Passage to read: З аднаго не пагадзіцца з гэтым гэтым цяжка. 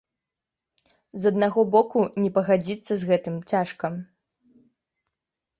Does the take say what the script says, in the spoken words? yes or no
no